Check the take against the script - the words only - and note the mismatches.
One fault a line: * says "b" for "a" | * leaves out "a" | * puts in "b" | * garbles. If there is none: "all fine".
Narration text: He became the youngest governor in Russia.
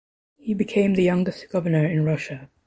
all fine